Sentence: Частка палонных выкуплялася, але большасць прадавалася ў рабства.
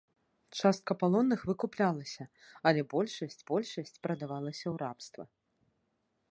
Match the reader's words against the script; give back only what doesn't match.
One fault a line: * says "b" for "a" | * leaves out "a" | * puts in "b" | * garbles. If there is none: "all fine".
* puts in "большасць"